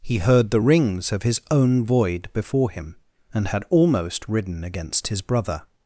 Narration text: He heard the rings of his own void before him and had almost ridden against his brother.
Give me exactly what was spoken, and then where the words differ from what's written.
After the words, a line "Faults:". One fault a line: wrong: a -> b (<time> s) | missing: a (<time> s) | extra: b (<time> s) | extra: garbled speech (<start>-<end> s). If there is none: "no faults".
He heard the rings of his own void before him and had almost ridden against his brother.
Faults:
no faults